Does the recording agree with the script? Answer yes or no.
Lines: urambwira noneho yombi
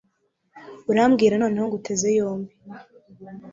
no